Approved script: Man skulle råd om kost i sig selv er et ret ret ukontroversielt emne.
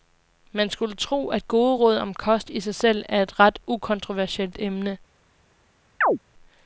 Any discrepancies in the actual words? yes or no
yes